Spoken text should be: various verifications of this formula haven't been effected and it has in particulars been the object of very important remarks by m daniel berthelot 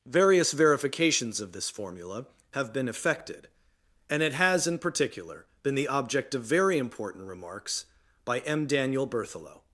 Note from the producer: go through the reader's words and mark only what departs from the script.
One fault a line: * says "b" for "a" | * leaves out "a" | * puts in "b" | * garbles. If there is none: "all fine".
* says "have" for "haven't"
* says "particular" for "particulars"